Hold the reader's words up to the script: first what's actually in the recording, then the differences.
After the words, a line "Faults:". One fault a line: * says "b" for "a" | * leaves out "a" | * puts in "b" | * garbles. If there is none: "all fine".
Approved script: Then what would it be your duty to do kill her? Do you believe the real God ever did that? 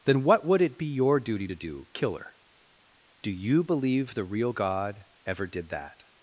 Then what would it be your duty to do kill her? Do you believe the real God ever did that?
Faults:
all fine